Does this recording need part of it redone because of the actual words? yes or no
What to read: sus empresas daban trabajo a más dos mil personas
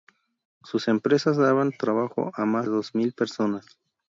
no